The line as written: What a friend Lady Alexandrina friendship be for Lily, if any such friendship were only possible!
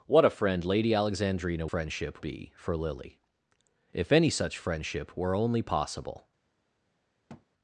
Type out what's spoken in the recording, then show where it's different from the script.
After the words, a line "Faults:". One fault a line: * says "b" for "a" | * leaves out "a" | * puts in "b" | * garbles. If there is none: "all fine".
What a friend Lady Alexandrina friendship be for Lily, if any such friendship were only possible!
Faults:
all fine